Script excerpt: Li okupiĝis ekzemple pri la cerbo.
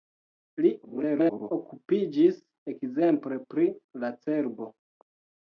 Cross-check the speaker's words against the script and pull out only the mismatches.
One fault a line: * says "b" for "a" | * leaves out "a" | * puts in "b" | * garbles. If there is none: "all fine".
* garbles